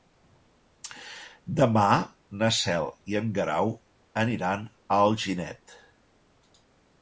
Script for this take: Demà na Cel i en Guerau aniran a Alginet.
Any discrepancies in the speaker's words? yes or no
no